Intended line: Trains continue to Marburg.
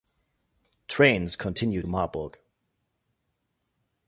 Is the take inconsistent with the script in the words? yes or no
yes